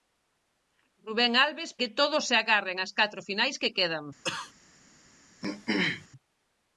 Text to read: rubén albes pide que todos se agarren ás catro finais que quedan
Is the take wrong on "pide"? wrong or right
wrong